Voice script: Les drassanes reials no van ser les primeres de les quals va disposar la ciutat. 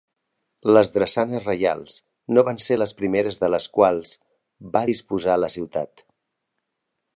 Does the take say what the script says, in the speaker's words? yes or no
yes